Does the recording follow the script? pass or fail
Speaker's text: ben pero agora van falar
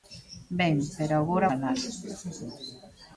fail